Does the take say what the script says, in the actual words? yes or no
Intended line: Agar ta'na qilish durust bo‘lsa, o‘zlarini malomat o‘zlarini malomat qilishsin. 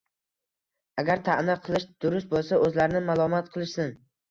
no